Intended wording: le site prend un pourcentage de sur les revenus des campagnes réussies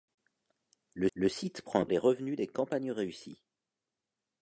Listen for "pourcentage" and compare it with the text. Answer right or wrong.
wrong